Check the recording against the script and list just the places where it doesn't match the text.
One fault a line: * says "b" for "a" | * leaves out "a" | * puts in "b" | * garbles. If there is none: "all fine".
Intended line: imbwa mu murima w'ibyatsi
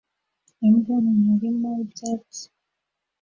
all fine